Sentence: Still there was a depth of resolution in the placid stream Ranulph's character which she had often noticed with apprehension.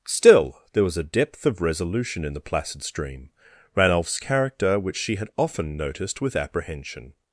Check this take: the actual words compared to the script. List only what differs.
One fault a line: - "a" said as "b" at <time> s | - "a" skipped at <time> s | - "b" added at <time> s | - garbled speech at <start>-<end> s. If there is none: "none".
none